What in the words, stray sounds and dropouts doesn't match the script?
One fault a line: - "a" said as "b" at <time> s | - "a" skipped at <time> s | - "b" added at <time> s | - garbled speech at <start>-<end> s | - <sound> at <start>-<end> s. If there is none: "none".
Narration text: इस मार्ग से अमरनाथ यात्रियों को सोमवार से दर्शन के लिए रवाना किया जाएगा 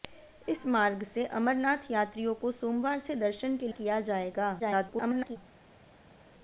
- "लिए रवाना" skipped at 3.7 s
- garbled speech at 4.6-5.4 s